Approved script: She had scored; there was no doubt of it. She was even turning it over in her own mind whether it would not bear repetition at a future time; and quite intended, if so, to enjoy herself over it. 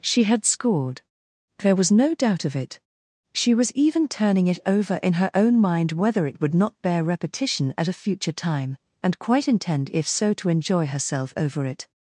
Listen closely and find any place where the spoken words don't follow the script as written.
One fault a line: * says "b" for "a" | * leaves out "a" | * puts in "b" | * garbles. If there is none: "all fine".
* says "intend" for "intended"